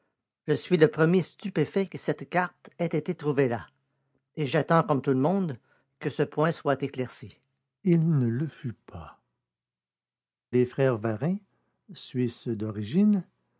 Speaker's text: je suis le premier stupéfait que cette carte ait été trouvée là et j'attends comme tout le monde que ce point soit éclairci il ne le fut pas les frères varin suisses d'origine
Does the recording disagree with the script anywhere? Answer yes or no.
no